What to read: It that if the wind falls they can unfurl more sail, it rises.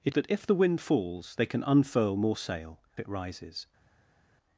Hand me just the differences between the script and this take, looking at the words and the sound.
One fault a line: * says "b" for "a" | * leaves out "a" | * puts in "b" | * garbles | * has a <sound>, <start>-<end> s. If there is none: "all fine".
all fine